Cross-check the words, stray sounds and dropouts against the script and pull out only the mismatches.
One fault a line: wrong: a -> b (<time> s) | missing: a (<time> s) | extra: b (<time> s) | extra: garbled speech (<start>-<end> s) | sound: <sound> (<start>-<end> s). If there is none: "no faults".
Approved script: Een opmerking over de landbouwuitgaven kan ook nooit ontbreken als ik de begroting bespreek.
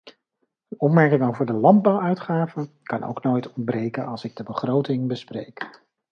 no faults